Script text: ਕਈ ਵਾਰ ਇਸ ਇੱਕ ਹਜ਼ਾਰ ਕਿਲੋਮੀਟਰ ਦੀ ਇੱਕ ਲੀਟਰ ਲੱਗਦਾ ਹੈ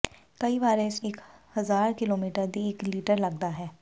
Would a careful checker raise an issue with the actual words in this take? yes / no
no